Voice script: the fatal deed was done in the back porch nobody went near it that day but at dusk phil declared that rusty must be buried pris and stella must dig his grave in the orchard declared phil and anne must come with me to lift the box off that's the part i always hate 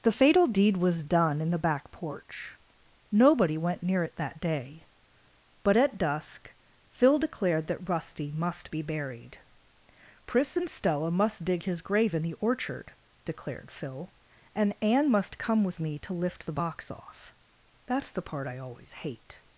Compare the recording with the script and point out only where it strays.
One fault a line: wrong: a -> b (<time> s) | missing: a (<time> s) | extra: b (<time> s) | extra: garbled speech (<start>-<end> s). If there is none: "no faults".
no faults